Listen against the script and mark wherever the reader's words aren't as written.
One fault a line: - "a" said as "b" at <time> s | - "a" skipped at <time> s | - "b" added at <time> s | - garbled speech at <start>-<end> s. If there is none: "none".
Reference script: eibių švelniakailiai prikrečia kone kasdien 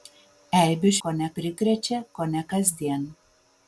- "švelniakailiai" said as "kone" at 1.1 s